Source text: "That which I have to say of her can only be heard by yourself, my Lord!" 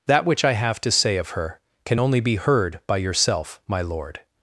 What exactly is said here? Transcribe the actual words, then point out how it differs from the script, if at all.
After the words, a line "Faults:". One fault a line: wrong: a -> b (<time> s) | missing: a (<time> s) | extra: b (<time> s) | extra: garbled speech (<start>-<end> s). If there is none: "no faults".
"That which I have to say of her can only be heard by yourself, my Lord!"
Faults:
no faults